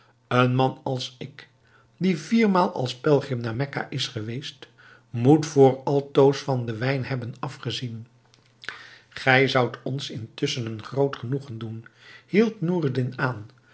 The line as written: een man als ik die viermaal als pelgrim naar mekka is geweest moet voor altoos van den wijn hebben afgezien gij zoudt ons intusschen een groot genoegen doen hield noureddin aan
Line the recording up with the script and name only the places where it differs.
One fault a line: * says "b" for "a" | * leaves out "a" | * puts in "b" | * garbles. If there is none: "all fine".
all fine